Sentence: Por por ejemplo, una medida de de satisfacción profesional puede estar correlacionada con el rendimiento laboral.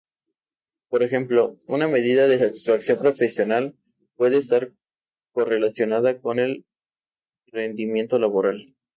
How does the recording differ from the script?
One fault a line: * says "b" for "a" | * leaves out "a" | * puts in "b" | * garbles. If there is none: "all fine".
* leaves out "por"
* leaves out "de"